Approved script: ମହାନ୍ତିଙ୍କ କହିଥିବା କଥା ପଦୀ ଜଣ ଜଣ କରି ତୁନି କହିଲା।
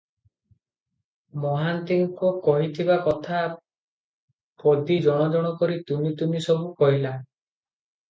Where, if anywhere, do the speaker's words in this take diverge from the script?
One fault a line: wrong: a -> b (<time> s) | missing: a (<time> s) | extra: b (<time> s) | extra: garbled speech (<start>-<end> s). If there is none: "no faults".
extra: ତୁନି ସବୁ (6.1 s)